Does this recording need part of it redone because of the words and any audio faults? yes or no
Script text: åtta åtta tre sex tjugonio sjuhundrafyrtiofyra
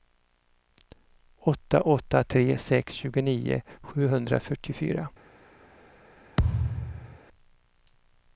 yes